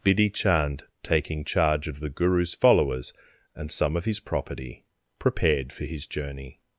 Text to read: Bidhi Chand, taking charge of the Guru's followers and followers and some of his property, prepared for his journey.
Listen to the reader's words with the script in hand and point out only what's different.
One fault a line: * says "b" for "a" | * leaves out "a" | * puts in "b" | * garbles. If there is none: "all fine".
* leaves out "followers and"